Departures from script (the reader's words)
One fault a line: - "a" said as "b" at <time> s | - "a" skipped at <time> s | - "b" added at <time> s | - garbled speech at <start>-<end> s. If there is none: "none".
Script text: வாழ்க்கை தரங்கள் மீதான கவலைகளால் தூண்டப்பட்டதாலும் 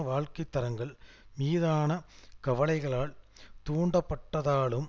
none